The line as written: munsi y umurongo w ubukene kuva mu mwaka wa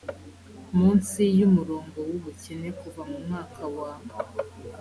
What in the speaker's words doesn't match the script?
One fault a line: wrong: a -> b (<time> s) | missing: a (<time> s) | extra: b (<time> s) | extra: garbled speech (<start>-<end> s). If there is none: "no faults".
no faults